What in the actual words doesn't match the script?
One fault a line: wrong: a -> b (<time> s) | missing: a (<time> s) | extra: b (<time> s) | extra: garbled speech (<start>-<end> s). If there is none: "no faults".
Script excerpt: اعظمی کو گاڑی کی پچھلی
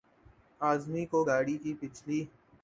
no faults